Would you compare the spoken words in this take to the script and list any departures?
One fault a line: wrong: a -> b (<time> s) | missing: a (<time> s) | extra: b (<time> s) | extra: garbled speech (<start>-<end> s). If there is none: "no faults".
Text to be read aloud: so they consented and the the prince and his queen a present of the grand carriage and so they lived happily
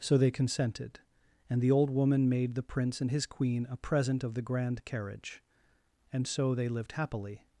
extra: old woman made (1.7 s)